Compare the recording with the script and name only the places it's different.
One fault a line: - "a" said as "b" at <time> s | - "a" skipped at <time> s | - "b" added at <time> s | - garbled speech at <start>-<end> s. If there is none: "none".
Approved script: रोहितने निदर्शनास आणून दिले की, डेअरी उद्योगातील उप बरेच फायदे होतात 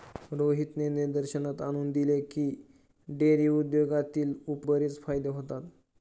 none